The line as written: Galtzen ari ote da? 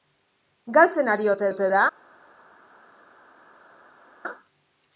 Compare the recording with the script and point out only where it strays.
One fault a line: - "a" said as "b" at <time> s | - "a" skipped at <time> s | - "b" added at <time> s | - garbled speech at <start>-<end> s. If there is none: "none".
- "ote" added at 1.5 s